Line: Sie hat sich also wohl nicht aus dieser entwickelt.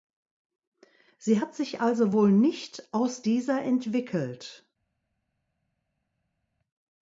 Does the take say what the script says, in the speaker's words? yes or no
yes